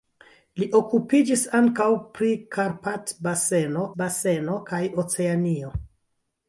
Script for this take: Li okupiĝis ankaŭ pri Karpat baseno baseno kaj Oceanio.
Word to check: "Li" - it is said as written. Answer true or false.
true